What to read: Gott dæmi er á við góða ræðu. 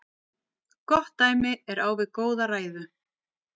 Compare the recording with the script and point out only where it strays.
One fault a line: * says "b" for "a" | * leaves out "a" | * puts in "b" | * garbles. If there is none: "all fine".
all fine